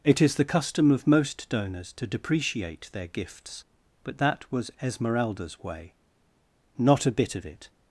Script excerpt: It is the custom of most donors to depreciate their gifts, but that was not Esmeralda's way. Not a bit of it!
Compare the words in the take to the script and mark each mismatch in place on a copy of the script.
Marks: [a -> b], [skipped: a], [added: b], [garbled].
It is the custom of most donors to depreciate their gifts, but that was [skipped: not] Esmeralda's way. Not a bit of it!